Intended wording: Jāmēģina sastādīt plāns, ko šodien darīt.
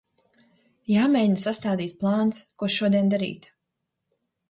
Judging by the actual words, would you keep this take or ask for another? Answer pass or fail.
pass